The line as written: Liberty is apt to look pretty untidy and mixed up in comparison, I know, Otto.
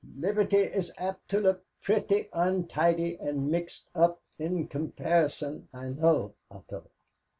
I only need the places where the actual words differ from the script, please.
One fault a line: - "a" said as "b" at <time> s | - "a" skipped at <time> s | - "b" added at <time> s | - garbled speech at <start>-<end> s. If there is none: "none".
none